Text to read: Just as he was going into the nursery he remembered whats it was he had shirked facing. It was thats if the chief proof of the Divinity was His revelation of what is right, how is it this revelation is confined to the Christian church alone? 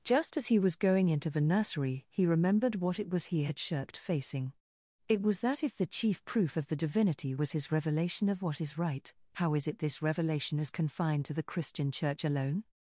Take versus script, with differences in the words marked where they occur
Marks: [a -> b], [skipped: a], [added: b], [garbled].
Just as he was going into the nursery he remembered [whats -> what] it was he had shirked facing. It was [thats -> that] if the chief proof of the Divinity was His revelation of what is right, how is it this revelation is confined to the Christian church alone?